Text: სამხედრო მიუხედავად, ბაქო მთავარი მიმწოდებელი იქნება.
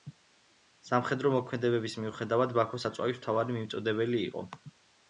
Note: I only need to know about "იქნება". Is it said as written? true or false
false